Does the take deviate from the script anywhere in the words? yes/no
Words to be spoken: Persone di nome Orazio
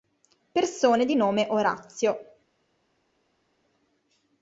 no